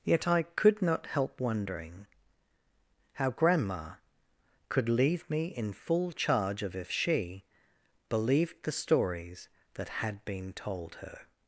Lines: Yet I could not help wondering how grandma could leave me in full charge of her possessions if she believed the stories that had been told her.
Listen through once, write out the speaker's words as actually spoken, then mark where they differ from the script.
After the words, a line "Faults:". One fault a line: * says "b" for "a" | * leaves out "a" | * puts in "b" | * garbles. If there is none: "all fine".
Yet I could not help wondering how grandma could leave me in full charge of if she believed the stories that had been told her.
Faults:
* leaves out "her possessions"